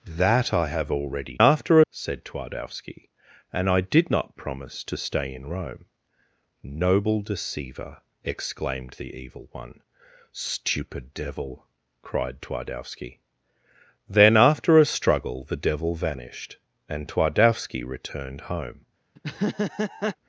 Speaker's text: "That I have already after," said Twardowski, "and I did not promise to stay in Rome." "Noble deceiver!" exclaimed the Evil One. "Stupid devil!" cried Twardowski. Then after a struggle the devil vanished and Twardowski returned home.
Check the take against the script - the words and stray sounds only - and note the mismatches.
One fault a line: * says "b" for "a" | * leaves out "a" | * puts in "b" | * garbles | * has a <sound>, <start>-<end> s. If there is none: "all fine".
* has a laugh, 19.2-20.2 s